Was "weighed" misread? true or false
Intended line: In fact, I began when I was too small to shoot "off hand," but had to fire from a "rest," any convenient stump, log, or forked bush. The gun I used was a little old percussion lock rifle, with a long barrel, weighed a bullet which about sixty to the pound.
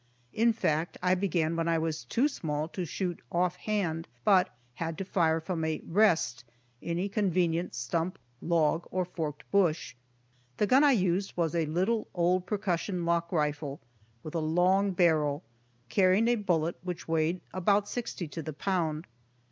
true